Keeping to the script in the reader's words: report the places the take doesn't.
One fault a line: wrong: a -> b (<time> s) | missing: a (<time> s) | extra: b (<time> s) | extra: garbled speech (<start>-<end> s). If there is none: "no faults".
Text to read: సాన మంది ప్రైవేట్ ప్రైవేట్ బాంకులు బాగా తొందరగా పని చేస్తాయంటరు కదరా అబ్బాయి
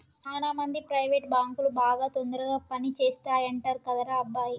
missing: ప్రైవేట్ (1.3 s)